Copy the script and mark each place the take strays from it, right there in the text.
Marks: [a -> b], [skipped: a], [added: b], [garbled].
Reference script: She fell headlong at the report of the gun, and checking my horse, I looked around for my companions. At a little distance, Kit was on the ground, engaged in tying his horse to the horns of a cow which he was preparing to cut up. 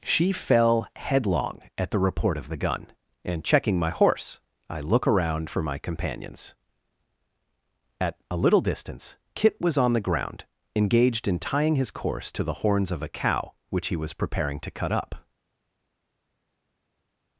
She fell headlong at the report of the gun, and checking my horse, I [looked -> look] around for my companions. At a little distance, Kit was on the ground, engaged in tying his [horse -> course] to the horns of a cow which he was preparing to cut up.